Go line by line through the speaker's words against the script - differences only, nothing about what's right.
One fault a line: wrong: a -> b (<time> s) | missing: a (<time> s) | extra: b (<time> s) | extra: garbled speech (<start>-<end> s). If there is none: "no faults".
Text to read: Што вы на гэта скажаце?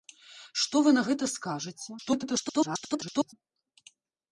extra: garbled speech (2.0-3.3 s)